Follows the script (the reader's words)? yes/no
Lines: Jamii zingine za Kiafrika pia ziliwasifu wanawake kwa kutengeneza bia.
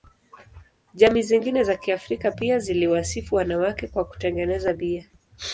yes